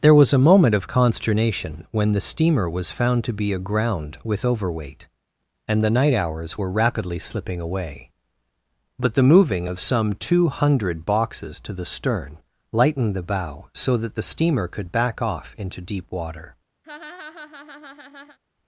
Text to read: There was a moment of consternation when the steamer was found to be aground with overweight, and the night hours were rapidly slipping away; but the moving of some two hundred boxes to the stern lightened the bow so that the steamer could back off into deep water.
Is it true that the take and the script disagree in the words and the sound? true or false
true